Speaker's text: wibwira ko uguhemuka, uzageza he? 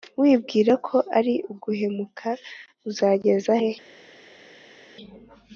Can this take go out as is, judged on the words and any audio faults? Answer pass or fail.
fail